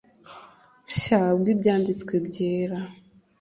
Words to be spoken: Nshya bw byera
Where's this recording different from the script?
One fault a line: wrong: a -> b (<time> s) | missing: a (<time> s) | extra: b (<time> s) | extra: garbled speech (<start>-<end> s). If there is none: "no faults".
extra: ibyanditswe (1.5 s)